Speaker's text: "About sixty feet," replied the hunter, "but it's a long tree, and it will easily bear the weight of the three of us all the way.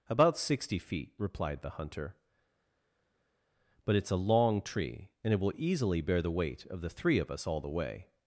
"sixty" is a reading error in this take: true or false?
false